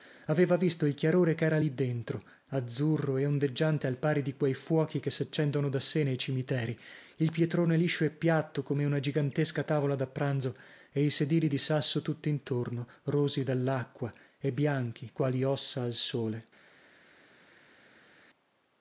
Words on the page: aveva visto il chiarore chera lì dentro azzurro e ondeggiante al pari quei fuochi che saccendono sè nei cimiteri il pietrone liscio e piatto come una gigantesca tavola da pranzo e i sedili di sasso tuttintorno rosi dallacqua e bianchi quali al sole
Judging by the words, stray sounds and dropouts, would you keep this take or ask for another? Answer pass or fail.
fail